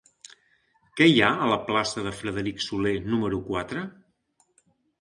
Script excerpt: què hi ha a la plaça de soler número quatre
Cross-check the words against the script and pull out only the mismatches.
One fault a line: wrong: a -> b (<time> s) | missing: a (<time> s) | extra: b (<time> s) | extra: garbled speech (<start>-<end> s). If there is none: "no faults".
extra: frederic (2.2 s)